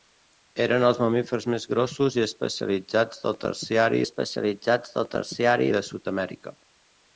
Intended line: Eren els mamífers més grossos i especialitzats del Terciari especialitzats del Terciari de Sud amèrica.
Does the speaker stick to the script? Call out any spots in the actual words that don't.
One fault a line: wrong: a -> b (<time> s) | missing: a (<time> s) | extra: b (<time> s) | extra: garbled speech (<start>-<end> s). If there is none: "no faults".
no faults